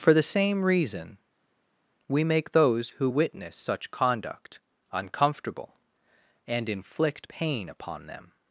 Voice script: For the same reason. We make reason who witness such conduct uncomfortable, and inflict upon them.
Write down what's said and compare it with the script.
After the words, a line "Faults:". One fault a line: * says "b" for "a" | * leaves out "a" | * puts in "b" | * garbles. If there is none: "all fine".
For the same reason. We make those who witness such conduct uncomfortable, and inflict pain upon them.
Faults:
* says "those" for "reason"
* puts in "pain"